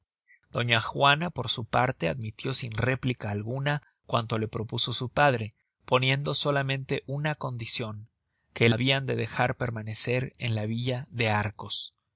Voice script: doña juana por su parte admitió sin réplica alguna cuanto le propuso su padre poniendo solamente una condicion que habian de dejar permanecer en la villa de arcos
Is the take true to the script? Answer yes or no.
yes